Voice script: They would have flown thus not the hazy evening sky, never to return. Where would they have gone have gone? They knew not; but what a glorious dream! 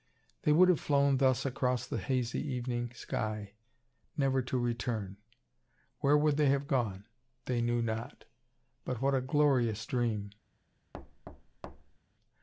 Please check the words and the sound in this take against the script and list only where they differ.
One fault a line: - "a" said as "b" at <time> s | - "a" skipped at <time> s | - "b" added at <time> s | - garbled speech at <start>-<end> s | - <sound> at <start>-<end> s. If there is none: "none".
- "not" said as "across" at 1.4 s
- "have gone" skipped at 7.1 s
- thud at 10.9-12.0 s